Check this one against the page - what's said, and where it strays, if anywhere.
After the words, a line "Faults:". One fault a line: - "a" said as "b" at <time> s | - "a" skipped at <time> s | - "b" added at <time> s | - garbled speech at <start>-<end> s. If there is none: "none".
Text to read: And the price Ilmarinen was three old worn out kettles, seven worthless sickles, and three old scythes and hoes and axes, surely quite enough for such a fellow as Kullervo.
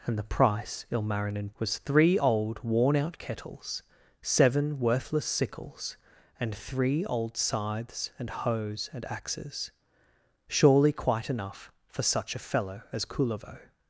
And the price Ilmarinen was three old worn out kettles, seven worthless sickles, and three old scythes and hoes and axes, surely quite enough for such a fellow as Kullervo.
Faults:
none